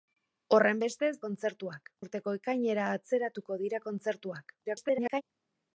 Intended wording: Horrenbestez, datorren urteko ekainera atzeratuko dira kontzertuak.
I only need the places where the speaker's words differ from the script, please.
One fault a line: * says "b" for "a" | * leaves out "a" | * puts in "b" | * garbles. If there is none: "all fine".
* says "kontzertuak" for "datorren"
* garbles